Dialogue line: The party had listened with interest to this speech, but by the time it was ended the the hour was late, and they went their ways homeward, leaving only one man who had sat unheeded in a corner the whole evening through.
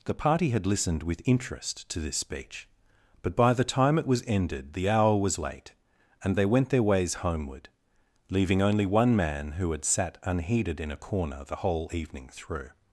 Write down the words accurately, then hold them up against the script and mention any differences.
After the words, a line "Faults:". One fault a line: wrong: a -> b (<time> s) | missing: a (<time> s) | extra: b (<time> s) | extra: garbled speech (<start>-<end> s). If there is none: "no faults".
The party had listened with interest to this speech, but by the time it was ended the hour was late, and they went their ways homeward, leaving only one man who had sat unheeded in a corner the whole evening through.
Faults:
missing: the (4.9 s)